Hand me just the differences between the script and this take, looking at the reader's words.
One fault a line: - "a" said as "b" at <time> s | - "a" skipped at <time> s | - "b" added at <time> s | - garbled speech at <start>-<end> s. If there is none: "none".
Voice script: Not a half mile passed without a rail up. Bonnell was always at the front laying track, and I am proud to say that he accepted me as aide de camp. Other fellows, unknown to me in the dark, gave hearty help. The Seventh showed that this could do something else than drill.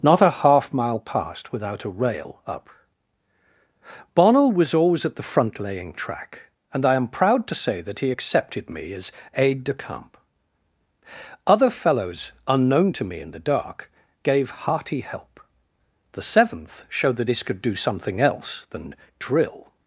none